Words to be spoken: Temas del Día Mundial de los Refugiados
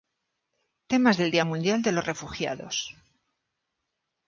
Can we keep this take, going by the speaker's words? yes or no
yes